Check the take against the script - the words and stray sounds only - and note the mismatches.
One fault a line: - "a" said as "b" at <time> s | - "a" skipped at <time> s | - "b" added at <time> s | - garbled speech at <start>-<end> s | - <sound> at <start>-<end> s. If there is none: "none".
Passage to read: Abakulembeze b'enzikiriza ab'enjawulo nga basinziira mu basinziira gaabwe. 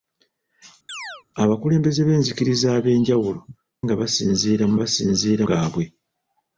- chirp at 0.9-1.2 s